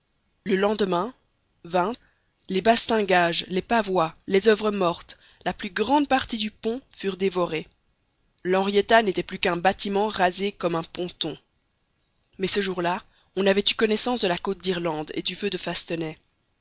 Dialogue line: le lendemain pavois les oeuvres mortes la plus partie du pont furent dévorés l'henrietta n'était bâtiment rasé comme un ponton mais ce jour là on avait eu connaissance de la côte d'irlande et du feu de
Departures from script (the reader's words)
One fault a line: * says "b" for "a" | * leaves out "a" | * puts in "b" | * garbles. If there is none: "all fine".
* puts in "les bastingages les"
* puts in "grande"
* puts in "plus qu'un"